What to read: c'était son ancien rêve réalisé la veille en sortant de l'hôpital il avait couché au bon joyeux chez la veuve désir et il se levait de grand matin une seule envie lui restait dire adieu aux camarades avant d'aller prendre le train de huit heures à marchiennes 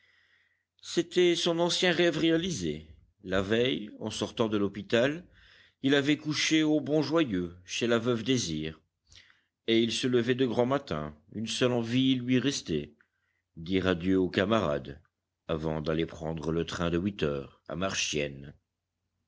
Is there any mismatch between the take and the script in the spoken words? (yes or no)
no